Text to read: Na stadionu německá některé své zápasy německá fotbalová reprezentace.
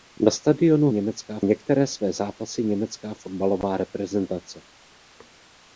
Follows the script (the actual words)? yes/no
yes